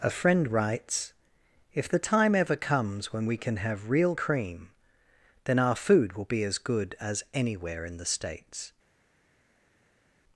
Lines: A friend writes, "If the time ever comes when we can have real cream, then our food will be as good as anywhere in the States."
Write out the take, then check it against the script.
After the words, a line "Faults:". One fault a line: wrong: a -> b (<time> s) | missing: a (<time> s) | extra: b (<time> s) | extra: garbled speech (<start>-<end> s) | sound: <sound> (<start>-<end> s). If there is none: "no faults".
A friend writes, "If the time ever comes when we can have real cream, then our food will be as good as anywhere in the States."
Faults:
no faults